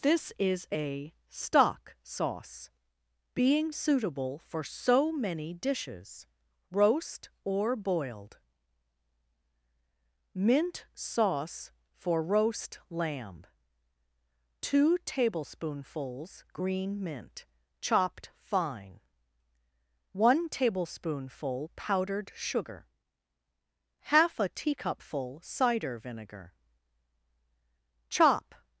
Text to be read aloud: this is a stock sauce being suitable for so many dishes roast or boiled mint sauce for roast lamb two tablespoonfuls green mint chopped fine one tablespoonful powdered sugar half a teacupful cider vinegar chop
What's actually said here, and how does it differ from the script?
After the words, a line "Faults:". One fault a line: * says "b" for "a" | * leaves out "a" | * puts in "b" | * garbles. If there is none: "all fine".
this is a stock sauce being suitable for so many dishes roast or boiled mint sauce for roast lamb two tablespoonfuls green mint chopped fine one tablespoonful powdered sugar half a teacupful cider vinegar chop
Faults:
all fine